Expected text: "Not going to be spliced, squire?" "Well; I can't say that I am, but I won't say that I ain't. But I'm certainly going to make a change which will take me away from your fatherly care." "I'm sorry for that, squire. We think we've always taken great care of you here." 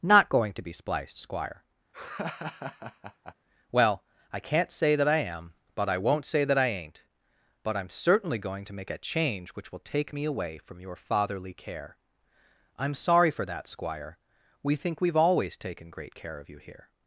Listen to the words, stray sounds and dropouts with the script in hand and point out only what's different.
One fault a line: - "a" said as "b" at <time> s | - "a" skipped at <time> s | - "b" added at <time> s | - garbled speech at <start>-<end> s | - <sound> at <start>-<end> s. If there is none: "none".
- laugh at 1.9-3.3 s